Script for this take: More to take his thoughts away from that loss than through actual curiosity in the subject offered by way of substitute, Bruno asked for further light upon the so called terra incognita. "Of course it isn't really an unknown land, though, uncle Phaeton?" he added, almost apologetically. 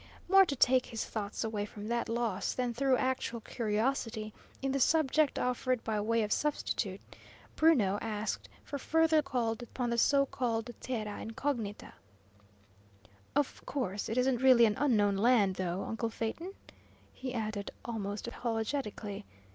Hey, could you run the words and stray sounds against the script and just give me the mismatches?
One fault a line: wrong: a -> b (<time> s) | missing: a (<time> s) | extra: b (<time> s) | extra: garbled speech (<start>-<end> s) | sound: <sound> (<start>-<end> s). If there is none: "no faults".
wrong: light -> called (9.2 s)